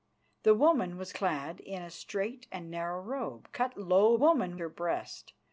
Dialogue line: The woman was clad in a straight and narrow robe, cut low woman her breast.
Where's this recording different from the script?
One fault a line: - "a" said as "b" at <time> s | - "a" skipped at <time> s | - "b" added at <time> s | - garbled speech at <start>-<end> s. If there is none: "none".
none